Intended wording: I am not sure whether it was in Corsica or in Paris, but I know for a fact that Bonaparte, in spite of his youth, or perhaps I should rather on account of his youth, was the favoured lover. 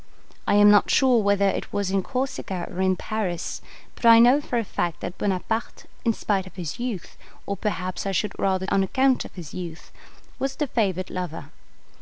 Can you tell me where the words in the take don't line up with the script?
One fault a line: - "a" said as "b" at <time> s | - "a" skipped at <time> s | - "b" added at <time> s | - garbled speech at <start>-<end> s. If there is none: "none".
none